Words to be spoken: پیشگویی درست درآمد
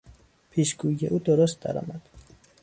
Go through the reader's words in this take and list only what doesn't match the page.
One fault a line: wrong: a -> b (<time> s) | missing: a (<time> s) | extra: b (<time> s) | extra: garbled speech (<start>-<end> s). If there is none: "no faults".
extra: او (1.0 s)